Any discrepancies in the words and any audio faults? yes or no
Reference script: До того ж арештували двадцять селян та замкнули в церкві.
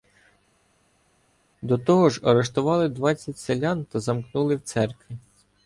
no